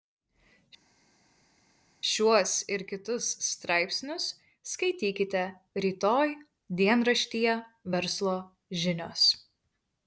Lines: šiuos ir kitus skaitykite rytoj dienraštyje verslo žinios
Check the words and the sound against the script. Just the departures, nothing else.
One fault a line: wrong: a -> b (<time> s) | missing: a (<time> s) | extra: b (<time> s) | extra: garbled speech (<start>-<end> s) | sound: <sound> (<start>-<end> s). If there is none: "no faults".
extra: straipsnius (3.5 s)